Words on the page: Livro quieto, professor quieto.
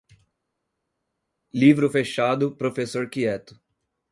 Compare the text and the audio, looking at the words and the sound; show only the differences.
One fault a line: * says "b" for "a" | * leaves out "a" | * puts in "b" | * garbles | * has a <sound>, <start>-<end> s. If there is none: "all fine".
* says "fechado" for "quieto"